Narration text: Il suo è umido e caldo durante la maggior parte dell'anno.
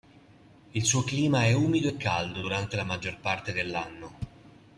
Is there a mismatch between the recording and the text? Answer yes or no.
yes